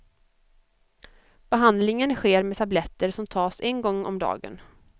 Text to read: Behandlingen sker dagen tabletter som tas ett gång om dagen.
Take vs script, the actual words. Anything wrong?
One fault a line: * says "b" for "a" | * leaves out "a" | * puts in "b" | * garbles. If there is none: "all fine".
* says "med" for "dagen"
* says "en" for "ett"